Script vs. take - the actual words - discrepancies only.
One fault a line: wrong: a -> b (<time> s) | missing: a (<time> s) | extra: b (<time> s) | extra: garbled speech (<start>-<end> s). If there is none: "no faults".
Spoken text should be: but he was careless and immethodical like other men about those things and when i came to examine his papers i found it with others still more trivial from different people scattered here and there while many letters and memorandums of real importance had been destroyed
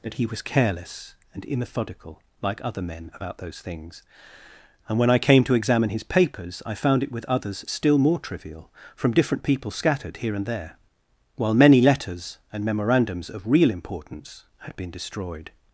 wrong: but -> that (0.0 s)